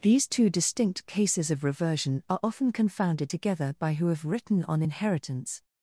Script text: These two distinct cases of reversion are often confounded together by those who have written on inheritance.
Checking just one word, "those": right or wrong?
wrong